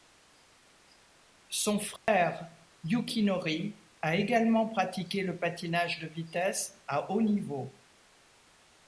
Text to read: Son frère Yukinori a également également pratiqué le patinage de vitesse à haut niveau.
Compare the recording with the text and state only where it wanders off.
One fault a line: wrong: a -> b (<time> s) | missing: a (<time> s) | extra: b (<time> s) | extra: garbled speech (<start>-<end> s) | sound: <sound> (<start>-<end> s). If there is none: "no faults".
sound: dropout (2.0-2.1 s)
missing: également (4.7 s)